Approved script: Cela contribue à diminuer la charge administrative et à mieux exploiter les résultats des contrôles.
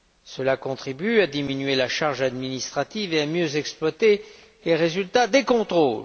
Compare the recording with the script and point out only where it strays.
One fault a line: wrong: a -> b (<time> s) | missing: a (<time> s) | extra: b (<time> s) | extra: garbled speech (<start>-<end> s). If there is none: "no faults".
no faults